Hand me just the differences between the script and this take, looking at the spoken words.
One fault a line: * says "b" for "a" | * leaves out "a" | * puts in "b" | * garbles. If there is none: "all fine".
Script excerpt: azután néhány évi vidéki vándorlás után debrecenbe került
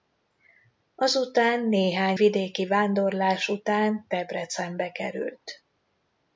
* leaves out "évi"